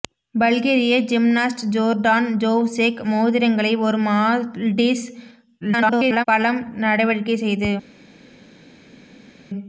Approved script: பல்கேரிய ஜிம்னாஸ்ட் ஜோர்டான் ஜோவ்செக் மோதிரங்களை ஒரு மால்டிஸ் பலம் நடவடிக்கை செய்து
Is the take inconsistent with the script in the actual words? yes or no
yes